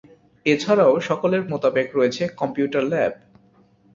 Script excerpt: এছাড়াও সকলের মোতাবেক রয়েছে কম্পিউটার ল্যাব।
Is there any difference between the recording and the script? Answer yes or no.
no